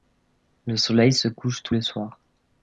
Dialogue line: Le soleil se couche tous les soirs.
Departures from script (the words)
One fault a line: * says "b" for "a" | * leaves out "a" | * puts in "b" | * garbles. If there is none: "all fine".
all fine